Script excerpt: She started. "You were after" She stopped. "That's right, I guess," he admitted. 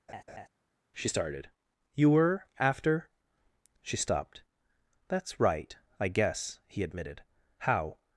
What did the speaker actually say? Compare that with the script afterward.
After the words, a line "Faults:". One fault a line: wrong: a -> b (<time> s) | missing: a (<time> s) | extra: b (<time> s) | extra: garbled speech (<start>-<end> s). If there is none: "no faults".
She started. "You were after" She stopped. "That's right, I guess," he admitted. "How
Faults:
extra: How (7.6 s)